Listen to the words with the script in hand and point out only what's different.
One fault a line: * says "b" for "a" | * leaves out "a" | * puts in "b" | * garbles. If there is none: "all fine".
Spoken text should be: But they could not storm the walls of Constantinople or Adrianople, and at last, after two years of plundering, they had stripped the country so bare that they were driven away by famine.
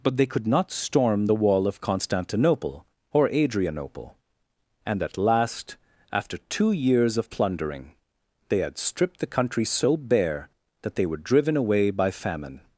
* says "wall" for "walls"